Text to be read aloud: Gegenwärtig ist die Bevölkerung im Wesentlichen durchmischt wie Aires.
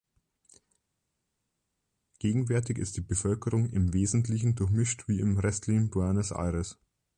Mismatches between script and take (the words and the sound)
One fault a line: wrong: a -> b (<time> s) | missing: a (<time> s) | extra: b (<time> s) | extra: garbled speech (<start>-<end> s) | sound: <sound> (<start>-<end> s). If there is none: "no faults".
extra: im restlichen Buenos (5.2 s)